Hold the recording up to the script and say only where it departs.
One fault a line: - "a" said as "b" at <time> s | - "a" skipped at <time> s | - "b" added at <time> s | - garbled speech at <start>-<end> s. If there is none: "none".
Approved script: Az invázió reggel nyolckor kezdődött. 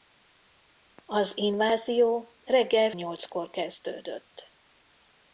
none